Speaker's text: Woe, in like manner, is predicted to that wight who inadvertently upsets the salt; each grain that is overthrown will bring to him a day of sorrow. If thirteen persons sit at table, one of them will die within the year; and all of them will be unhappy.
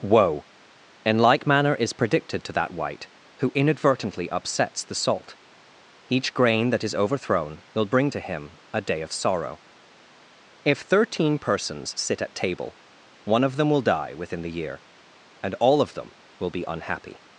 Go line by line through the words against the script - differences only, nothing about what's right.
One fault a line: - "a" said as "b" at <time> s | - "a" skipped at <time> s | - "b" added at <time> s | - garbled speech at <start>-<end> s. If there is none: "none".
none